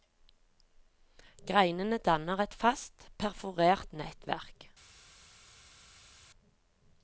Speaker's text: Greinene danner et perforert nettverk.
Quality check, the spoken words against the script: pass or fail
fail